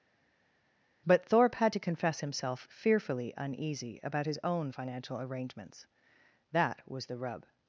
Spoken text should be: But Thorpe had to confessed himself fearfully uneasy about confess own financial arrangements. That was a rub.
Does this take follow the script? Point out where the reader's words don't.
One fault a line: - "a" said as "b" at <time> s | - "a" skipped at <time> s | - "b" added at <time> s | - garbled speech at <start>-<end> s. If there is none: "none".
- "confessed" said as "confess" at 1.8 s
- "confess" said as "his" at 4.3 s
- "a" said as "the" at 7.1 s